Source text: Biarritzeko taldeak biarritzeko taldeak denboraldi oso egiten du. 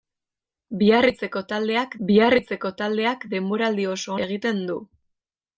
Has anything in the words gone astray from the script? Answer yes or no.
no